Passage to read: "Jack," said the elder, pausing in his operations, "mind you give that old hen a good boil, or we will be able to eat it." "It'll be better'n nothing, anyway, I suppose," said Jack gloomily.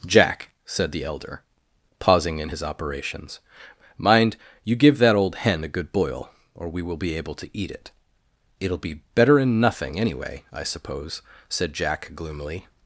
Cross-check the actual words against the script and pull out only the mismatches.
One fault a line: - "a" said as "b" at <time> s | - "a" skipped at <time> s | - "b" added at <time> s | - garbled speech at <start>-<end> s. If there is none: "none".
none